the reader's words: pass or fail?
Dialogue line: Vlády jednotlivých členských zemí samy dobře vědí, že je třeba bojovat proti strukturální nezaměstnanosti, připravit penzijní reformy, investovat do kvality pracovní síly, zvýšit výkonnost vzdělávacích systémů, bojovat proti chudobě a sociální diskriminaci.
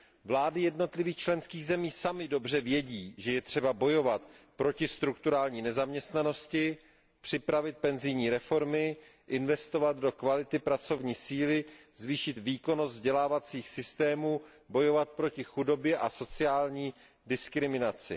pass